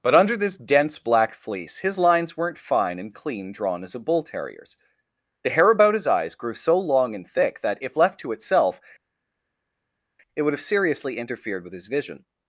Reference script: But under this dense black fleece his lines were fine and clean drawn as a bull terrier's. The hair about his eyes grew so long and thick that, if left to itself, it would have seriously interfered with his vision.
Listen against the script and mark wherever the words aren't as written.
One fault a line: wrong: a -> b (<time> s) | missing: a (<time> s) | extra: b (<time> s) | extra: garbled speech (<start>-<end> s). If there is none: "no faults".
wrong: were -> weren't (2.4 s)